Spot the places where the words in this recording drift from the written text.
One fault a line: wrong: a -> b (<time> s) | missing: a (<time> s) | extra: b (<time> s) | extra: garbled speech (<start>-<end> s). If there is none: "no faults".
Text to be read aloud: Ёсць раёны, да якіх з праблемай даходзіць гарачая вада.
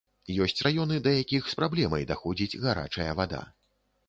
no faults